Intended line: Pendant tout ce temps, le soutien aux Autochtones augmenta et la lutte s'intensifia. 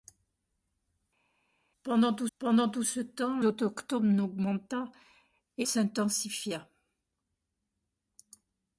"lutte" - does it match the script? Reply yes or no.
no